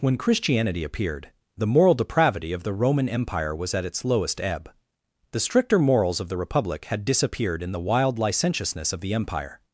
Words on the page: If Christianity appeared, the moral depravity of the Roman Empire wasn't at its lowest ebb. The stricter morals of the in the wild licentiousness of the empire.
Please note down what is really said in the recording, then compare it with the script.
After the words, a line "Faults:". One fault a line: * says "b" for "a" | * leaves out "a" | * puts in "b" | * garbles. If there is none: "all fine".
When Christianity appeared, the moral depravity of the Roman Empire was at its lowest ebb. The stricter morals of the republic had disappeared in the wild licentiousness of the empire.
Faults:
* says "When" for "If"
* says "was" for "wasn't"
* puts in "republic had disappeared"